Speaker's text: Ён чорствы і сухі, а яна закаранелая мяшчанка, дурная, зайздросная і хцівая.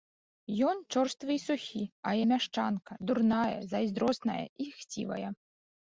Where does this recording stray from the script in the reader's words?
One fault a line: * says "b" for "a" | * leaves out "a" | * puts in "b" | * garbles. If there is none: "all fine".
* leaves out "яна закаранелая"